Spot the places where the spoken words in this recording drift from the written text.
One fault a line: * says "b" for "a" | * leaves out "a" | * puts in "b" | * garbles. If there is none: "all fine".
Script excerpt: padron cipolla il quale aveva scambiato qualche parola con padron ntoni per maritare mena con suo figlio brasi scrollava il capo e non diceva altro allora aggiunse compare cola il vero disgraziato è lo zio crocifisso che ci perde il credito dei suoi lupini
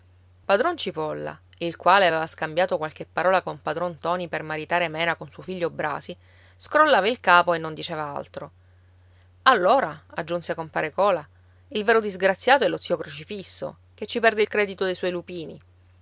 all fine